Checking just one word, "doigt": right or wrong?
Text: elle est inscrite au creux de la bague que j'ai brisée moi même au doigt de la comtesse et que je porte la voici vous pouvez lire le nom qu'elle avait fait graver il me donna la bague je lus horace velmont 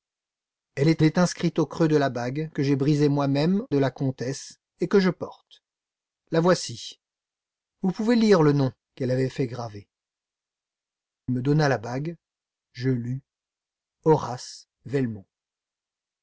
wrong